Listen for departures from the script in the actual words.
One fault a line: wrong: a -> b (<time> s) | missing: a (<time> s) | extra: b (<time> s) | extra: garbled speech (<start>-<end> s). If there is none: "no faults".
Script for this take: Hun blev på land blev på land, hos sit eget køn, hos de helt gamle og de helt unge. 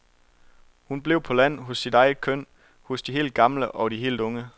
missing: blev på land (1.6 s)